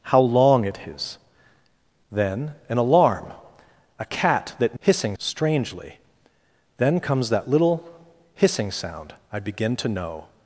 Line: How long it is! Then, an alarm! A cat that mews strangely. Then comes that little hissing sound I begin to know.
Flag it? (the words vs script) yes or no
yes